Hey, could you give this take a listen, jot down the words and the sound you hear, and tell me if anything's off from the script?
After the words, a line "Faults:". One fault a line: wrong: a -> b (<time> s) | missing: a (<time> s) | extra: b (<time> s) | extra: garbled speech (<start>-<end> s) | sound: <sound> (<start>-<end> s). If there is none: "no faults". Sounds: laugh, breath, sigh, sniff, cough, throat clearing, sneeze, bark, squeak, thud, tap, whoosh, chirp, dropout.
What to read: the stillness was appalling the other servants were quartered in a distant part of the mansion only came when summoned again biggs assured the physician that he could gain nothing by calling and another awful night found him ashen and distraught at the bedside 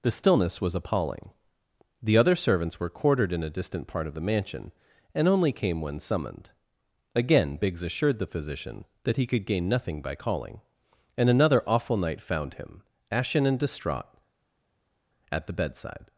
the stillness was appalling the other servants were quartered in a distant part of the mansion and only came when summoned again biggs assured the physician that he could gain nothing by calling and another awful night found him ashen and distraught at the bedside
Faults:
extra: and (5.1 s)